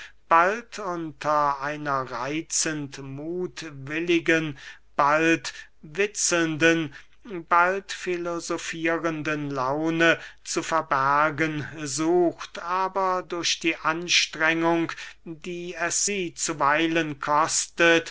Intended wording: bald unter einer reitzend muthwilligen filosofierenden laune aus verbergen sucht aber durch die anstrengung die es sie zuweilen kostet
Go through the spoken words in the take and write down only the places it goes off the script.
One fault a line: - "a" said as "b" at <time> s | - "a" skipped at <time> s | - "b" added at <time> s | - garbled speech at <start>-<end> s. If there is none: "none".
- "bald witzelnden bald" added at 5.0 s
- "aus" said as "zu" at 10.4 s